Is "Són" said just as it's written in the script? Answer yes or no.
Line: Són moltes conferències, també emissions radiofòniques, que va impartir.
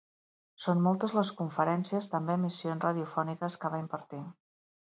yes